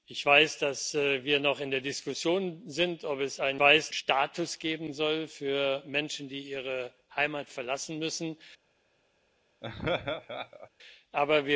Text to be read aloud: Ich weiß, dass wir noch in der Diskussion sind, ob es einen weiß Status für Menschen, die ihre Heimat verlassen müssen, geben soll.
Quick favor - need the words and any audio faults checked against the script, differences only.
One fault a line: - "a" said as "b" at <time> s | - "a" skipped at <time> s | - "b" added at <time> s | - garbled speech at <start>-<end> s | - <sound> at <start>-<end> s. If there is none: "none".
- laugh at 9.6-10.7 s